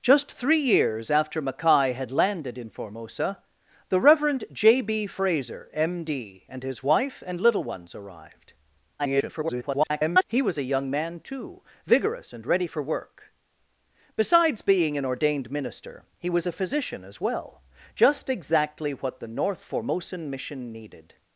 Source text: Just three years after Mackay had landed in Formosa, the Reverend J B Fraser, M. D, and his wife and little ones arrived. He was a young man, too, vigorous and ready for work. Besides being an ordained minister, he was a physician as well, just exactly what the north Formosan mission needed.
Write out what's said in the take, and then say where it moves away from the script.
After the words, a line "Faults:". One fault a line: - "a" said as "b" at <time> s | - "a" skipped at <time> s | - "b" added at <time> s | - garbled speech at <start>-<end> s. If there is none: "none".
Just three years after Mackay had landed in Formosa, the Reverend J B Fraser, M. D, and his wife and little ones arrived. [garbled] He was a young man, too, vigorous and ready for work. Besides being an ordained minister, he was a physician as well, just exactly what the north Formosan mission needed.
Faults:
- garbled speech at 9.0-10.2 s